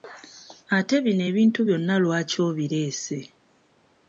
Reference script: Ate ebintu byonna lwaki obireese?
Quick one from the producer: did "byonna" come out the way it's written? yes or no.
yes